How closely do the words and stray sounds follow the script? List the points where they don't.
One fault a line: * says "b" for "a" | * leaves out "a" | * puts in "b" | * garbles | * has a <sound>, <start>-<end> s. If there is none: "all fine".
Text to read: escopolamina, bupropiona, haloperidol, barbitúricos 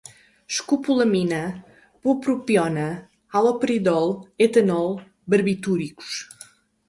* puts in "etanol"